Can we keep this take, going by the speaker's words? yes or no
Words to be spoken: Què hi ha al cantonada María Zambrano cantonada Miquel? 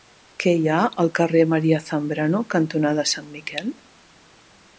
no